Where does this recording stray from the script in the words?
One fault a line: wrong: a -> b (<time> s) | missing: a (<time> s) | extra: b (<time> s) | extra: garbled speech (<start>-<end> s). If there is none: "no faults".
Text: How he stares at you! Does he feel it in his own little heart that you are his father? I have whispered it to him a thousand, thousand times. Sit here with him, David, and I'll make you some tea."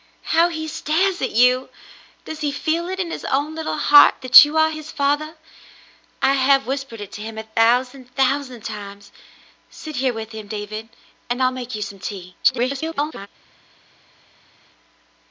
extra: garbled speech (12.4-13.3 s)